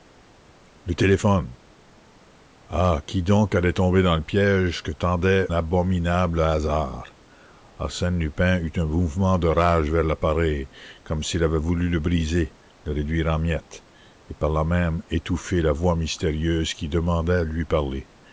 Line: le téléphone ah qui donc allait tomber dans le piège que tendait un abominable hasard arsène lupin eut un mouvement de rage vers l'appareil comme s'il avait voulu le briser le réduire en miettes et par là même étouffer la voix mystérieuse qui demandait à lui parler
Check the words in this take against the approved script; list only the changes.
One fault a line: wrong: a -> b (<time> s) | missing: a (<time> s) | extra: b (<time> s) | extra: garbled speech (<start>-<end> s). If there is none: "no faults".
missing: un (5.5 s)